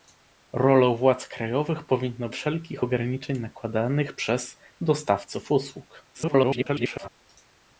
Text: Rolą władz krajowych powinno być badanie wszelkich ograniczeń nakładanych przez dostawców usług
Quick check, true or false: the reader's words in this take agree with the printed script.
false